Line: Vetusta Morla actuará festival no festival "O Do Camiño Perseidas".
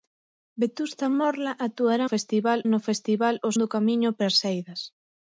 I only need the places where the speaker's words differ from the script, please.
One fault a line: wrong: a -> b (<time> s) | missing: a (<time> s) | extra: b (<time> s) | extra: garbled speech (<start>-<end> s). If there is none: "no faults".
no faults